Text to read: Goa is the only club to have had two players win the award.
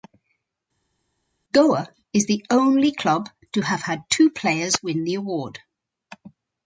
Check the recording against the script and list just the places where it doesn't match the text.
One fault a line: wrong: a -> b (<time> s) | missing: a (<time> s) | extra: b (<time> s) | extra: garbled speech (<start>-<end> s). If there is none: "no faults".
no faults